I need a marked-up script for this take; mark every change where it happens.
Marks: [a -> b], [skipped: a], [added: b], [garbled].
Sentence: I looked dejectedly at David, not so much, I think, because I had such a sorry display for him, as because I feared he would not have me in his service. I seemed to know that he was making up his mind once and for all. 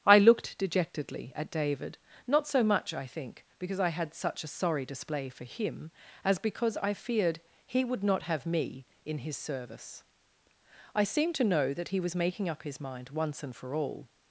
I looked dejectedly at David, not so much, I think, because I had such a sorry display for him, as because I feared he would not have me in his service. I seemed to know that he was making up his mind once and for all.